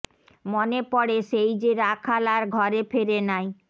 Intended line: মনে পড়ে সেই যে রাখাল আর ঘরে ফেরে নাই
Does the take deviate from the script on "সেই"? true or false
false